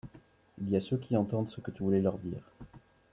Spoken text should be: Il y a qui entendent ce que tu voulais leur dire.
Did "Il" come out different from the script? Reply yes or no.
no